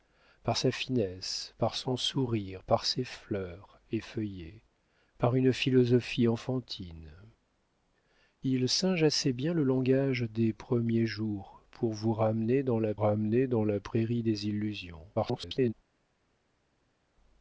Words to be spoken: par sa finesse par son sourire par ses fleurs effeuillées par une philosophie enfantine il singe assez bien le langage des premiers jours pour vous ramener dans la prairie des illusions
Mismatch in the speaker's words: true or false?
true